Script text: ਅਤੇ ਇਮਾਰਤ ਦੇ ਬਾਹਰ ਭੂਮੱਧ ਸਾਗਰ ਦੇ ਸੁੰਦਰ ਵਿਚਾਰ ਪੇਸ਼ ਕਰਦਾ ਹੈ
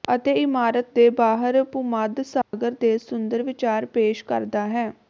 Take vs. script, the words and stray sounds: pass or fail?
fail